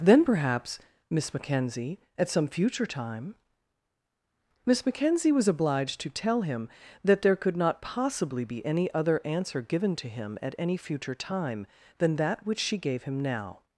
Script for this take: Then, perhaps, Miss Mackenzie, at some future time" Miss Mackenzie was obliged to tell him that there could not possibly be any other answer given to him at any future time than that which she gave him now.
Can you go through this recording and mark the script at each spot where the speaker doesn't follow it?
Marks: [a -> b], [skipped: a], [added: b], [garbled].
Then, perhaps, Miss Mackenzie, at some future time" Miss Mackenzie was obliged to tell him that there could not possibly be any other answer given to him at any future time than that which she gave him now.